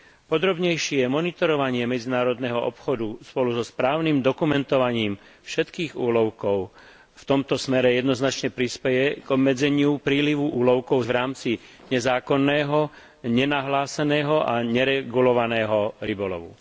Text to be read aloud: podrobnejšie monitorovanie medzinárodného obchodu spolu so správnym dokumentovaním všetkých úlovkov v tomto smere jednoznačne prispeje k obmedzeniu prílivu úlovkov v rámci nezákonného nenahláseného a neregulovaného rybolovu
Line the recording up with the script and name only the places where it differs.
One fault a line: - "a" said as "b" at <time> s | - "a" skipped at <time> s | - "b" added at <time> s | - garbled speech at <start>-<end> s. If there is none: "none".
none